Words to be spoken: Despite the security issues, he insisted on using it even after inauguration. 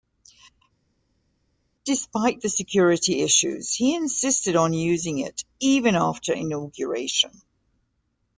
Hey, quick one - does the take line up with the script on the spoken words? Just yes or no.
yes